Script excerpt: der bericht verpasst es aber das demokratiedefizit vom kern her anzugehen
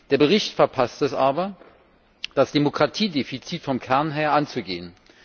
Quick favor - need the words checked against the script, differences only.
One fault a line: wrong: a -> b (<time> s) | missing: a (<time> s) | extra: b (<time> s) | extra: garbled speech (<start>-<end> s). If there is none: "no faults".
no faults